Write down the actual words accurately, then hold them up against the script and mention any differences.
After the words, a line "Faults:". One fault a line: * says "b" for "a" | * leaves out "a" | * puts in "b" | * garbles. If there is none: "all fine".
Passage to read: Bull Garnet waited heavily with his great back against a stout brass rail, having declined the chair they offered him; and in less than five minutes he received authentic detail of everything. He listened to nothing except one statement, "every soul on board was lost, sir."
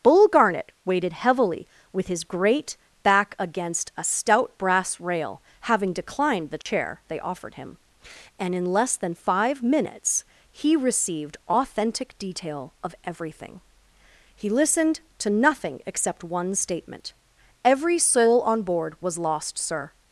Bull Garnet waited heavily with his great back against a stout brass rail, having declined the chair they offered him; and in less than five minutes he received authentic detail of everything. He listened to nothing except one statement, "every soul on board was lost, sir."
Faults:
all fine